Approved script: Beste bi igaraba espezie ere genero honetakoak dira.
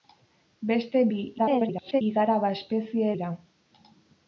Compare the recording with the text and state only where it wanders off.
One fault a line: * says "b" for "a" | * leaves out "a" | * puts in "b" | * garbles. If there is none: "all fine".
* garbles
* leaves out "ere genero honetakoak"